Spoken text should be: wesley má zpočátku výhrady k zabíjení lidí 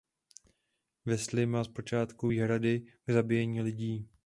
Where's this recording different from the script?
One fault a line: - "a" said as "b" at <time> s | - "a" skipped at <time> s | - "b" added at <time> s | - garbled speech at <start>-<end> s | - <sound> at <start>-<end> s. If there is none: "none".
none